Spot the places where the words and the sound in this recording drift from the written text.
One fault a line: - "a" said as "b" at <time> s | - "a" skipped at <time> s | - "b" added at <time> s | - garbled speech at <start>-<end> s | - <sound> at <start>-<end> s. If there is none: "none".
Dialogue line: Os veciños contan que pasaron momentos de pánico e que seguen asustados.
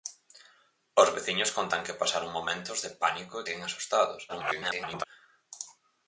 - "que" skipped at 3.5 s
- garbled speech at 4.3-5.0 s